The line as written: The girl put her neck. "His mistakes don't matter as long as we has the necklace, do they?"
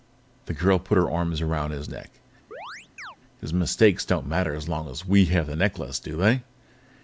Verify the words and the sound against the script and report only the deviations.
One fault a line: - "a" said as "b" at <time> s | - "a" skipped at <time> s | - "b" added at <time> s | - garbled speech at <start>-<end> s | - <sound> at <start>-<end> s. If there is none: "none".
- "arms around his" added at 1.1 s
- chirp at 2.5-3.2 s
- "has" said as "have" at 5.3 s